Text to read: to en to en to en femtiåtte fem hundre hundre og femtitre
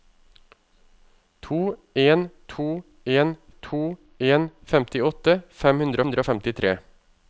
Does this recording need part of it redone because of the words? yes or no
no